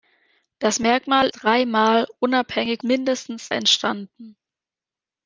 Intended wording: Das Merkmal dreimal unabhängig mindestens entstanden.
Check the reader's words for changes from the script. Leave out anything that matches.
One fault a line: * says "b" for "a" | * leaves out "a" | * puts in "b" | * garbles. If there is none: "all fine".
all fine